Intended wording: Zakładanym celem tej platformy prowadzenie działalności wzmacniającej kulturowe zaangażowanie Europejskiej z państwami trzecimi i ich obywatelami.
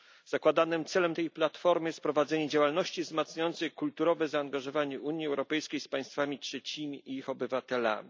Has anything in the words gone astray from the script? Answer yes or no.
yes